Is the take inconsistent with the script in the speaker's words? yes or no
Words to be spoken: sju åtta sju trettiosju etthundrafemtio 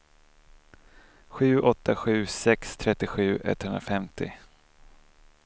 yes